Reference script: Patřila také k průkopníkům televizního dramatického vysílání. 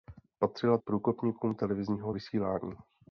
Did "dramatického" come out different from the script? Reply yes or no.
yes